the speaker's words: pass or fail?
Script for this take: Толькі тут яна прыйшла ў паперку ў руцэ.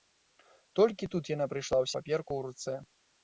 pass